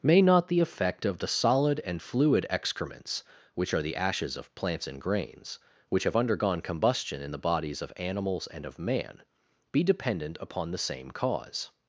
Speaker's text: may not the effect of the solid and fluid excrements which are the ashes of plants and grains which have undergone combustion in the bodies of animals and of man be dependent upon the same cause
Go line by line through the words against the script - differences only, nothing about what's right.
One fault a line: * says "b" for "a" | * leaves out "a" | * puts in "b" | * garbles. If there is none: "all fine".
all fine